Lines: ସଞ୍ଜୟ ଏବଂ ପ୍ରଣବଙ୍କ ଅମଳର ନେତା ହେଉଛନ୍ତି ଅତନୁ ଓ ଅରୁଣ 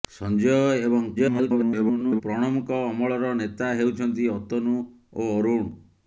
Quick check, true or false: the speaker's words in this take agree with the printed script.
false